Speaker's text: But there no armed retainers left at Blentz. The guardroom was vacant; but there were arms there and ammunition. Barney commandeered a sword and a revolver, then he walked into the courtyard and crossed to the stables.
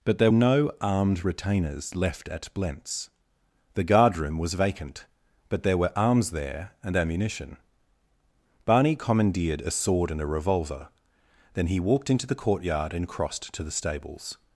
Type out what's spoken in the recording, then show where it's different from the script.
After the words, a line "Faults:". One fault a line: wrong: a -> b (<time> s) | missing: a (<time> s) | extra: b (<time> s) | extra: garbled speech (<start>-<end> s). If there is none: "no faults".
But there no armed retainers left at Blentz. The guardroom was vacant; but there were arms there and ammunition. Barney commandeered a sword and a revolver, then he walked into the courtyard and crossed to the stables.
Faults:
no faults